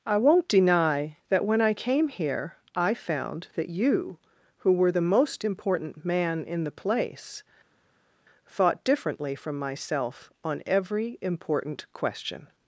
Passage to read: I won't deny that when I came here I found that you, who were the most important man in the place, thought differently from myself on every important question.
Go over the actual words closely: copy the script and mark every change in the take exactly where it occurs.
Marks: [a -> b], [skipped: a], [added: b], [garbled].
I won't deny that when I came here I found that you, who were the most important man in the place, thought differently from myself on every important question.